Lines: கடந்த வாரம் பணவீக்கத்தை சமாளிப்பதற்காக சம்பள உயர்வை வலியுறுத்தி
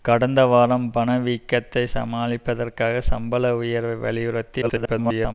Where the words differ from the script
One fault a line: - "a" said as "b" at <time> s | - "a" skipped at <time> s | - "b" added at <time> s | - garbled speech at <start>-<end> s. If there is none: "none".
- garbled speech at 4.6-5.3 s